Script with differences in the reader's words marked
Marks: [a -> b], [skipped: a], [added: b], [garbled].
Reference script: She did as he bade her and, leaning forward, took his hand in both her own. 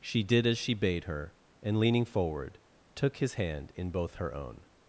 She did as [he -> she] bade her and, leaning forward, took his hand in both her own.